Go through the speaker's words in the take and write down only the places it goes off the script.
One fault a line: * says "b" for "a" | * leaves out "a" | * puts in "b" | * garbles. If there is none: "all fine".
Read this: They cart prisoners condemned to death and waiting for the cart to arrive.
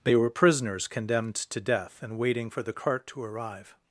* says "were" for "cart"